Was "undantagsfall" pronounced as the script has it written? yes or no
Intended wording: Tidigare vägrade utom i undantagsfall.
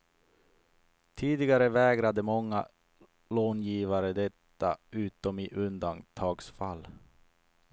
yes